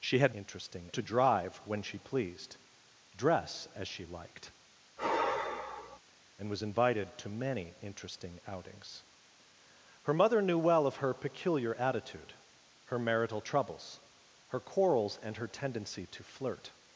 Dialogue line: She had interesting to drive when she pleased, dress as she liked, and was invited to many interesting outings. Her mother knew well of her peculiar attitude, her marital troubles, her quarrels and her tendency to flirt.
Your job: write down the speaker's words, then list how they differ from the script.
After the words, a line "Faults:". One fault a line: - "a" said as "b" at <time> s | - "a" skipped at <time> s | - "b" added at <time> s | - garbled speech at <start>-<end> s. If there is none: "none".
She had interesting to drive when she pleased, dress as she liked, and was invited to many interesting outings. Her mother knew well of her peculiar attitude, her marital troubles, her quarrels and her tendency to flirt.
Faults:
none